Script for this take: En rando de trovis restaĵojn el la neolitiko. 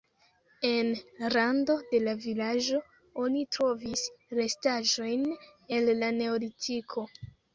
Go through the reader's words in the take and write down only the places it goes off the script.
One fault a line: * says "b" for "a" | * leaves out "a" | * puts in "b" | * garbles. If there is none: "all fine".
* puts in "la vilaĝo oni"